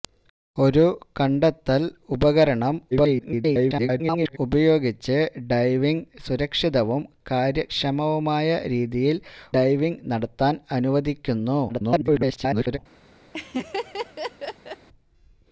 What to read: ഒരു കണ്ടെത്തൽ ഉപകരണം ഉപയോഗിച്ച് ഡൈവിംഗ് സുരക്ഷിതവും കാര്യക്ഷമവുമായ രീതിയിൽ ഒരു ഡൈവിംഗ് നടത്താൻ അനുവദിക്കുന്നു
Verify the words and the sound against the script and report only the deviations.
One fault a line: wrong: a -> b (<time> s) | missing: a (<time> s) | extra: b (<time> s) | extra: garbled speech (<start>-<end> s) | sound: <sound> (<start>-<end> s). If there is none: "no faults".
extra: garbled speech (2.9-4.4 s)
missing: ഒരു (9.2 s)
extra: garbled speech (11.7-12.8 s)
sound: laugh (13.3-14.9 s)